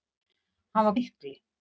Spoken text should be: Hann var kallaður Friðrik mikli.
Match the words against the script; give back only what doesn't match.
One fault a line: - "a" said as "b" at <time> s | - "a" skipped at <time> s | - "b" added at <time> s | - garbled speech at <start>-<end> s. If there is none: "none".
- "kallaður Friðrik" skipped at 0.9 s